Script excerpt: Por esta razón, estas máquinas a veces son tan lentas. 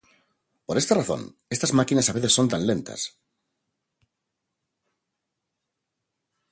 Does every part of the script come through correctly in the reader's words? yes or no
yes